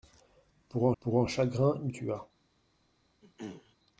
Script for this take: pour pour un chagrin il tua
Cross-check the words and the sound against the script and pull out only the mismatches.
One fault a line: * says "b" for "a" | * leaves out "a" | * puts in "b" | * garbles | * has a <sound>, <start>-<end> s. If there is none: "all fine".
* has a throat clearing, 3.2-3.8 s